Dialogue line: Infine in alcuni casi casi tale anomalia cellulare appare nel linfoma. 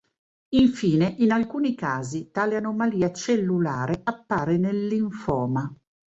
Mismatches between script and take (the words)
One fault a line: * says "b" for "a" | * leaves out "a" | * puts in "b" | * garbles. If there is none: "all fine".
* leaves out "casi"